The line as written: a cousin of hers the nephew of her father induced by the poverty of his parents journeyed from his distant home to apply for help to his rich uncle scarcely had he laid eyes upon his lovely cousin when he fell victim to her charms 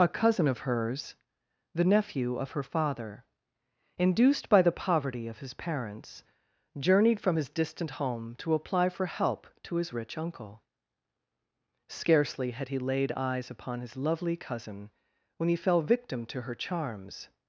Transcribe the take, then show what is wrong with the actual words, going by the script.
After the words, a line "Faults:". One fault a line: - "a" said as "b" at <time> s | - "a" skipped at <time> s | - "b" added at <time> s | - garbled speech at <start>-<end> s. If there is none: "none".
a cousin of hers the nephew of her father induced by the poverty of his parents journeyed from his distant home to apply for help to his rich uncle scarcely had he laid eyes upon his lovely cousin when he fell victim to her charms
Faults:
none